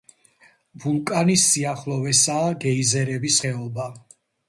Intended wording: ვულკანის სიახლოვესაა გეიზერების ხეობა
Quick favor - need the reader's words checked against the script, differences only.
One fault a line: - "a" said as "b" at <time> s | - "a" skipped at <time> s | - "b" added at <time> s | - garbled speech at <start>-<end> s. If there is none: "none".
none